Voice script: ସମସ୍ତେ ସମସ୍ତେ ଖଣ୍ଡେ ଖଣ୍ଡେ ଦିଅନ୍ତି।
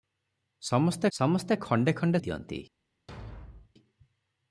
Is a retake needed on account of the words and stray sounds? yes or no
yes